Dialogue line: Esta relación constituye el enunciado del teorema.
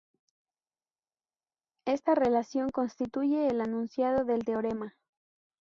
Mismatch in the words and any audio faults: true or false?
false